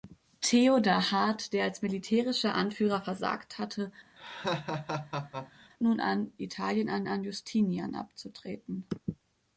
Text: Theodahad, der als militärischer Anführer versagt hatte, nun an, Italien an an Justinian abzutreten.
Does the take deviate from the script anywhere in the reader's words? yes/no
no